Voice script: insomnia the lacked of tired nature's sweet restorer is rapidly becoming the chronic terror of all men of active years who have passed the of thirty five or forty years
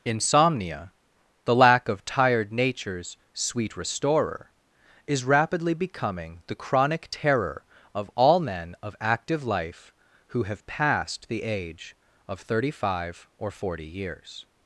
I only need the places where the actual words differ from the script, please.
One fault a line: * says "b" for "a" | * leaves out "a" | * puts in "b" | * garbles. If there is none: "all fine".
* says "lack" for "lacked"
* says "life" for "years"
* puts in "age"